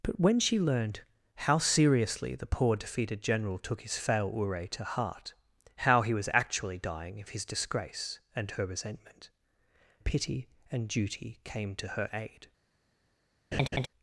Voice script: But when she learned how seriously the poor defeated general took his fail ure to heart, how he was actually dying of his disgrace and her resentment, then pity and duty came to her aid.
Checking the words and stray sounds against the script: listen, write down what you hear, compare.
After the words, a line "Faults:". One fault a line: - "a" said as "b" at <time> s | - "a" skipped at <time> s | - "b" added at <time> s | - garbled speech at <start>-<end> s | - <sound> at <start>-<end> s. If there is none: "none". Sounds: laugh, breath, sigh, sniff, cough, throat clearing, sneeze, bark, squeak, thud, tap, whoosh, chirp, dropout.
But when she learned how seriously the poor defeated general took his fail ure to heart, how he was actually dying of his disgrace and her resentment, pity and duty came to her aid.
Faults:
- "then" skipped at 9.3 s
- laugh at 13.5-13.9 s